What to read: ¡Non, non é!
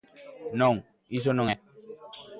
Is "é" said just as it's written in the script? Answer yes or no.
yes